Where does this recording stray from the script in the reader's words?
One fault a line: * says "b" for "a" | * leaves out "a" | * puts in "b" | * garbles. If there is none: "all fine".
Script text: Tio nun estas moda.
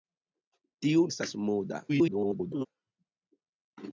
* leaves out "nun"
* garbles